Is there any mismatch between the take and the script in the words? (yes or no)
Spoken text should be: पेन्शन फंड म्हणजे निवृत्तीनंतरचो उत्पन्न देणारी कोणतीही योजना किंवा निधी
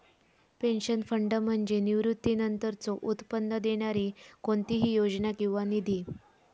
no